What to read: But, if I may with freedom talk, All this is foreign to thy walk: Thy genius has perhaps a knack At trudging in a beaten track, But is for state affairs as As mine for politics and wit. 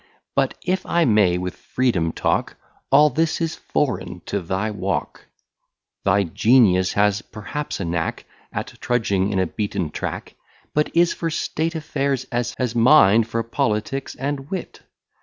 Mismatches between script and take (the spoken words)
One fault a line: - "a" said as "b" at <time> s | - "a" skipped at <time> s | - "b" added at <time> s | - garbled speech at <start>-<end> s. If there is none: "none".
none